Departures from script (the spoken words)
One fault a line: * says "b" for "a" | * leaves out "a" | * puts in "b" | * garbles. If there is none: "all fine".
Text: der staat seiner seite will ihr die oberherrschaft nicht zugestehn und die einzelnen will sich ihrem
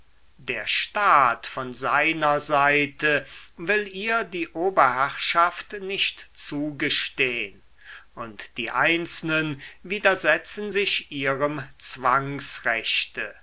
* puts in "von"
* says "widersetzen" for "will"